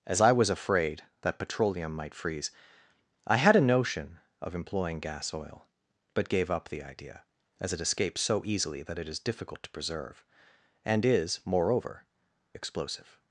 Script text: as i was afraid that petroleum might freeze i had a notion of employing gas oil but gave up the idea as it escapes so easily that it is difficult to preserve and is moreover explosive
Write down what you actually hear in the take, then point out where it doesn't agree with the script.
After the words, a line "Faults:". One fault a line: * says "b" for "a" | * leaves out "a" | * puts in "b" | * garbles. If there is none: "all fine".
as i was afraid that petroleum might freeze i had a notion of employing gas oil but gave up the idea as it escapes so easily that it is difficult to preserve and is moreover explosive
Faults:
all fine